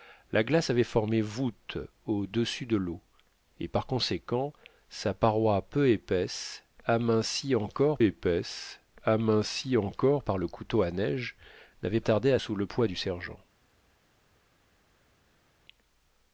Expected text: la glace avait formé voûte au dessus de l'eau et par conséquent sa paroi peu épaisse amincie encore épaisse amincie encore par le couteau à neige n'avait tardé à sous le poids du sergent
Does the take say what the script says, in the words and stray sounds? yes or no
yes